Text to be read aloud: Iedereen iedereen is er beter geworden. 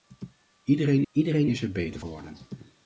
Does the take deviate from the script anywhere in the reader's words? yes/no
no